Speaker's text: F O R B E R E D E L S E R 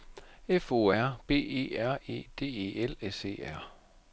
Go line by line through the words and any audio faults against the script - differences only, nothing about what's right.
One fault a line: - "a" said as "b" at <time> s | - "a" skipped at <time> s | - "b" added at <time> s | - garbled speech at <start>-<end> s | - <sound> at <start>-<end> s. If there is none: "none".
none